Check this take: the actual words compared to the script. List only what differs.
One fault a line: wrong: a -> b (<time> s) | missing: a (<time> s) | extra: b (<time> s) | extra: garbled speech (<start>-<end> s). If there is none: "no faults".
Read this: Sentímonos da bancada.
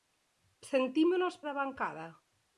no faults